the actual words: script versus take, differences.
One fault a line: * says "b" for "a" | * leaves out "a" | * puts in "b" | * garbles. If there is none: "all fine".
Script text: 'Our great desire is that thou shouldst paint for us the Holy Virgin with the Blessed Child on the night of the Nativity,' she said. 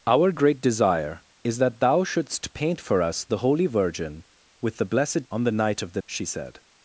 * leaves out "Child"
* leaves out "Nativity"